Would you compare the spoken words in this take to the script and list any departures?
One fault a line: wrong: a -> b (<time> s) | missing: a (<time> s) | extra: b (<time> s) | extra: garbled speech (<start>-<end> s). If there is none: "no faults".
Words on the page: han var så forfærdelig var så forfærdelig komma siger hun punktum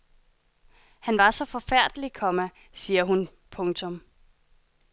missing: var så forfærdelig (2.1 s)